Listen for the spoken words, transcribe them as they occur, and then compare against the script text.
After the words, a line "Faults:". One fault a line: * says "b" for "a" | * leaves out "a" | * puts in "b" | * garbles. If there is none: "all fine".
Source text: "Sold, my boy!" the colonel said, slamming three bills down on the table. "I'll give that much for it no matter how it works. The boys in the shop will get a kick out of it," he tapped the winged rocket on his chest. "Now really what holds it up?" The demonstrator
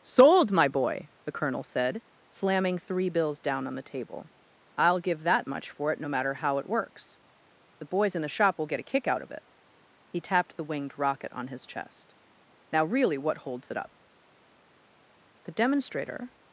"Sold, my boy!" the colonel said, slamming three bills down on the table. "I'll give that much for it no matter how it works. The boys in the shop will get a kick out of it," he tapped the winged rocket on his chest. "Now really what holds it up?" The demonstrator
Faults:
all fine